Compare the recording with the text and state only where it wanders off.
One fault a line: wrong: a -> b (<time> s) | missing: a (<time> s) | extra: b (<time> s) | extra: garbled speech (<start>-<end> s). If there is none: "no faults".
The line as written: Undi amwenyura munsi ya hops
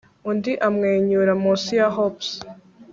no faults